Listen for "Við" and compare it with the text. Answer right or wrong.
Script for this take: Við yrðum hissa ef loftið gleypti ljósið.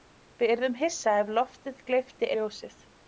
right